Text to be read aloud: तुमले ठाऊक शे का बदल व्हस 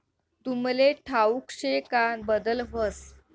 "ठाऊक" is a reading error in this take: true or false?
false